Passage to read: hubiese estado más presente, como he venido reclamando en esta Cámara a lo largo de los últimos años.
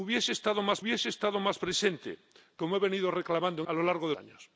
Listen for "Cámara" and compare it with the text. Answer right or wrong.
wrong